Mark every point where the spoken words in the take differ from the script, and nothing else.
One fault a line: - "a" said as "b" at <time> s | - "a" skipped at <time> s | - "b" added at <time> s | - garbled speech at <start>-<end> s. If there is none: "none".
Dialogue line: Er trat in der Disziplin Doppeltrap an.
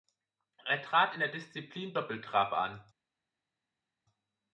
none